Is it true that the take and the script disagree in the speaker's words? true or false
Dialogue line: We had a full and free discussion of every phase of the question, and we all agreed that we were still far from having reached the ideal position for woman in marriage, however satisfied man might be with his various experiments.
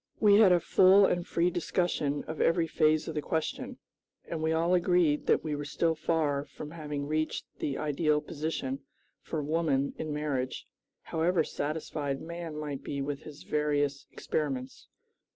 false